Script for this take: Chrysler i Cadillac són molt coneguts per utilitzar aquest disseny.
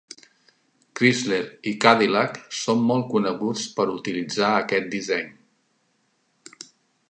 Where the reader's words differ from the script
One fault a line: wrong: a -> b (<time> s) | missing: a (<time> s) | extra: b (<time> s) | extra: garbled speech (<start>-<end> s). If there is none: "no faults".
no faults